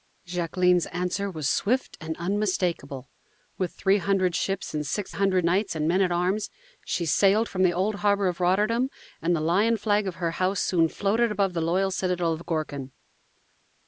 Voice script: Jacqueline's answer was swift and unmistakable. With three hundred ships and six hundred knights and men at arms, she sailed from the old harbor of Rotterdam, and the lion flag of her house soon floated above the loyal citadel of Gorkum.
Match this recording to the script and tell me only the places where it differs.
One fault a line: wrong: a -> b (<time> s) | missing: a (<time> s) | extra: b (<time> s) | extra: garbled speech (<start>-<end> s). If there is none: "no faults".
no faults